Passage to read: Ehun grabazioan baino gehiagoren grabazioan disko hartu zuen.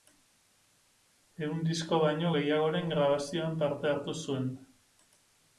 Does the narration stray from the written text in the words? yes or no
yes